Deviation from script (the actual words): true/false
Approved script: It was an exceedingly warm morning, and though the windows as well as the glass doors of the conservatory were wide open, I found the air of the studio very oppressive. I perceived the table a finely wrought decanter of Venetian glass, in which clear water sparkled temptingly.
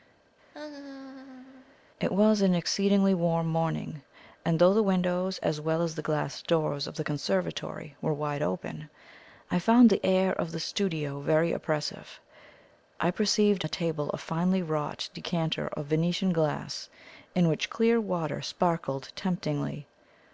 false